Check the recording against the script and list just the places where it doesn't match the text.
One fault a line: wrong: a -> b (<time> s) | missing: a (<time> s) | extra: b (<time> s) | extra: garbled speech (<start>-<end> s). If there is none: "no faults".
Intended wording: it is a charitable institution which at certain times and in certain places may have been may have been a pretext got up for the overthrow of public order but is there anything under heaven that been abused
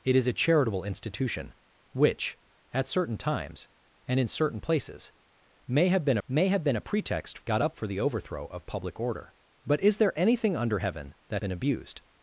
no faults